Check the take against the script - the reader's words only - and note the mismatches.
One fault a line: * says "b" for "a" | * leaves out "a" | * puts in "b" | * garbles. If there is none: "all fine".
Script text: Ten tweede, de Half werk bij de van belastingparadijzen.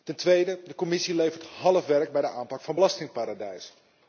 * puts in "Commissie levert"
* puts in "aanpak"